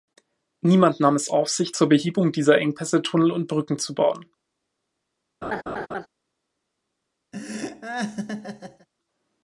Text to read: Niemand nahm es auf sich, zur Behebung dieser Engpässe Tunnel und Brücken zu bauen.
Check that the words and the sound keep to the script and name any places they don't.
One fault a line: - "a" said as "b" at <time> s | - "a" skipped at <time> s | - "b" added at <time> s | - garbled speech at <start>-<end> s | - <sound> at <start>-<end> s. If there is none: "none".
- laugh at 5.4-6.1 s
- laugh at 7.3-8.9 s